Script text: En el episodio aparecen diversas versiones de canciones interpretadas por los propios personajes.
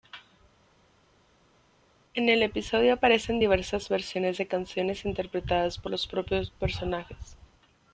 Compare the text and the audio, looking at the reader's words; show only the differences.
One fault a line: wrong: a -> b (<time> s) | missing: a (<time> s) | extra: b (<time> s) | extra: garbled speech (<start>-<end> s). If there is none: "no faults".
no faults